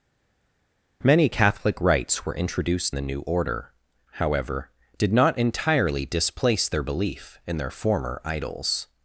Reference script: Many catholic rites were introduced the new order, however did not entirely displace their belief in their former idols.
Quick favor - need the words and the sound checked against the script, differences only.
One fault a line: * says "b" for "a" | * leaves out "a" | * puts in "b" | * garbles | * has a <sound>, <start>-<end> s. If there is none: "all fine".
all fine